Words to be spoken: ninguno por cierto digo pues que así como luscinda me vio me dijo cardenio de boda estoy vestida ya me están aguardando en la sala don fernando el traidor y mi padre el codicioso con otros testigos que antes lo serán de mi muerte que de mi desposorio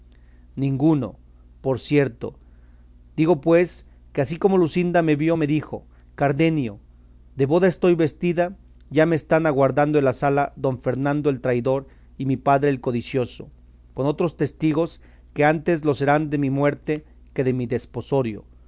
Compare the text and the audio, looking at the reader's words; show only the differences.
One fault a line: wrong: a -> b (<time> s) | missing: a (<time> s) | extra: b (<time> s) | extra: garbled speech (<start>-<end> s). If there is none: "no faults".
no faults